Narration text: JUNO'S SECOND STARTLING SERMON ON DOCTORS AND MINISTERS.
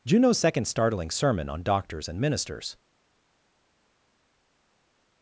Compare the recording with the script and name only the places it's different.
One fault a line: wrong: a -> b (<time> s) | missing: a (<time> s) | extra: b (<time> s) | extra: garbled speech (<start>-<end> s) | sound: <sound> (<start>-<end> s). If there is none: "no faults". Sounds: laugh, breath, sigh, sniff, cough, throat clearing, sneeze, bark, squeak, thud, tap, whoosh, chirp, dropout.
no faults